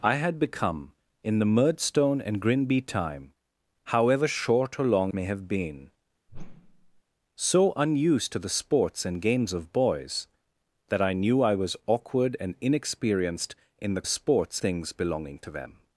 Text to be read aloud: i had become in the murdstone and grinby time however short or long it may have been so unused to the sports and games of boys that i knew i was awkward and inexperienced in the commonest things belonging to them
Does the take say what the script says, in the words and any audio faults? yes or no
no